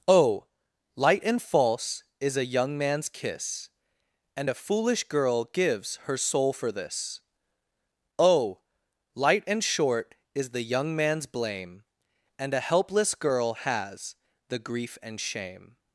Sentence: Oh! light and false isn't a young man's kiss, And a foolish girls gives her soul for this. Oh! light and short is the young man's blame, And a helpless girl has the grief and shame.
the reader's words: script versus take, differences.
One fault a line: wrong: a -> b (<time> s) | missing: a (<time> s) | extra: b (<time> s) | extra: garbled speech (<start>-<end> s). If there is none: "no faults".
wrong: isn't -> is (2.2 s)
wrong: girls -> girl (5.0 s)